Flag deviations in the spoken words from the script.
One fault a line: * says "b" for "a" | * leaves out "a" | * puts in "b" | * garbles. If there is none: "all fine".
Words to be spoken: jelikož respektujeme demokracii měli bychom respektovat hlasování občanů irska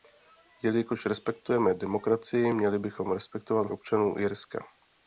* leaves out "hlasování"